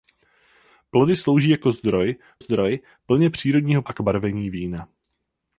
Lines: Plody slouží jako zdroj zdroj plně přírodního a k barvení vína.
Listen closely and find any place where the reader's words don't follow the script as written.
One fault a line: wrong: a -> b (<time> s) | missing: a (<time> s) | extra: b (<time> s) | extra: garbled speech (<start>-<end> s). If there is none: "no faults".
no faults